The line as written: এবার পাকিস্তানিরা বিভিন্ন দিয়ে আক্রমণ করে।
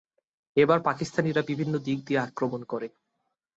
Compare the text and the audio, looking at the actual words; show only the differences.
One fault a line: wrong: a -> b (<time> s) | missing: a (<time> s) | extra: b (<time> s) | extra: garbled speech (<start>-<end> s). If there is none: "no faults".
extra: দিক (1.9 s)